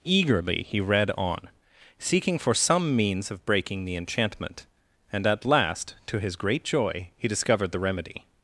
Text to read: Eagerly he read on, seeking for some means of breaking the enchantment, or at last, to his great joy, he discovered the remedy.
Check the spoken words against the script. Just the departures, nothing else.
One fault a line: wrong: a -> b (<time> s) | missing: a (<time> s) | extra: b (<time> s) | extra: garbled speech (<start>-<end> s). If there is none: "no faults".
wrong: or -> and (5.1 s)